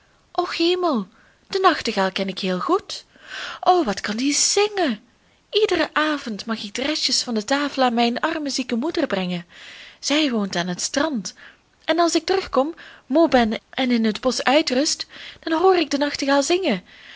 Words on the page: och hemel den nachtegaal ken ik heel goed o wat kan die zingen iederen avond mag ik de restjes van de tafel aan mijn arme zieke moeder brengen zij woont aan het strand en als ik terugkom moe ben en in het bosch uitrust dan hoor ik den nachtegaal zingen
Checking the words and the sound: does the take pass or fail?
pass